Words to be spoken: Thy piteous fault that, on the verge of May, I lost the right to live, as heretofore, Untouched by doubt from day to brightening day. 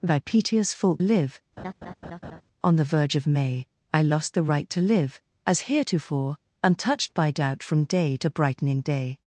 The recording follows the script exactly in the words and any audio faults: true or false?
false